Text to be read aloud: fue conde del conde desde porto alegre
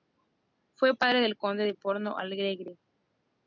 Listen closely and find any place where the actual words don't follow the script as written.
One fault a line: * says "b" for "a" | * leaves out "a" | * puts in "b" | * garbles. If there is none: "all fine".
* says "padre" for "conde"
* says "de" for "desde"